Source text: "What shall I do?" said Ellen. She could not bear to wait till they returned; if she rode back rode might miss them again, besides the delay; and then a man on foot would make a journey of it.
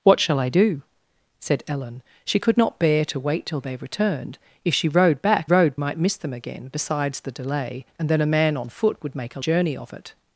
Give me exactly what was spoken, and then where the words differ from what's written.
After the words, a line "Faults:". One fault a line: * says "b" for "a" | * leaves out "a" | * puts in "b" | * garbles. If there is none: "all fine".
"What shall I do?" said Ellen. She could not bear to wait till they returned; if she rode back rode might miss them again, besides the delay; and then a man on foot would make a journey of it.
Faults:
all fine